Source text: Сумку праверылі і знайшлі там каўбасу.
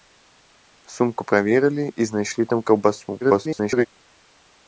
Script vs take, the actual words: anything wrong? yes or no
yes